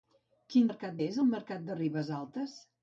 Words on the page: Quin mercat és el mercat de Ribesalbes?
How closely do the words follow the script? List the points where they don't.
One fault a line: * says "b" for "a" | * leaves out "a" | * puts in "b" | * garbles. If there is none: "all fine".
all fine